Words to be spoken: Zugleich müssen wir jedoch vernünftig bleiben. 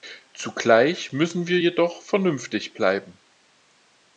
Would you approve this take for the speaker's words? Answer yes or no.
yes